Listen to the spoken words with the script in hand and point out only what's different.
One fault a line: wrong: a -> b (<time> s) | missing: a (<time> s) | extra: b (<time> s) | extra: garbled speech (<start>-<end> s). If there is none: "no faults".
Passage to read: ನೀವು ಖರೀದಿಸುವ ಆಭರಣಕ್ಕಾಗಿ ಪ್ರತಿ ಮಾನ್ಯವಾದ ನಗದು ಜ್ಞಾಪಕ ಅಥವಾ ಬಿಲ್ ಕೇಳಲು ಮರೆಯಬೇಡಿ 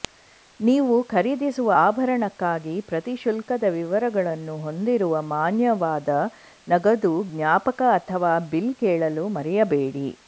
extra: ಶುಲ್ಕದ ವಿವರಗಳನ್ನು ಹೊಂದಿರುವ (3.2 s)